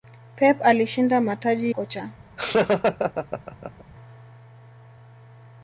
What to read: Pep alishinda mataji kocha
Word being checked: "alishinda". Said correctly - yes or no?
yes